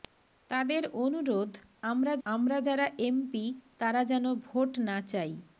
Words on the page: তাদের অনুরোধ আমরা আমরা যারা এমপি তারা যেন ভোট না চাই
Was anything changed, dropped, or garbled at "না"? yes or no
no